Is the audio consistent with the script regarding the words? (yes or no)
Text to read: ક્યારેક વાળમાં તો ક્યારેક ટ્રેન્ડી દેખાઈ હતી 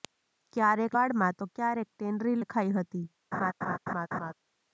yes